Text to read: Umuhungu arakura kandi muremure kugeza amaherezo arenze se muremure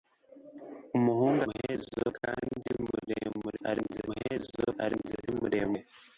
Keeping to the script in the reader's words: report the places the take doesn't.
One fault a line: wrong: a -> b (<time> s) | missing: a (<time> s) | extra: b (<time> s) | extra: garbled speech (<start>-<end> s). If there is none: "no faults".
wrong: arakura -> amaherezo (1.4 s)
wrong: kugeza -> arenze (3.7 s)